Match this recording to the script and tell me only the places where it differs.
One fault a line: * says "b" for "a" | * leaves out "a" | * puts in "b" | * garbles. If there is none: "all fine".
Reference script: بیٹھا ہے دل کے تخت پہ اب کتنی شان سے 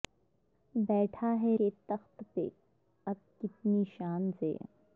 * leaves out "دل"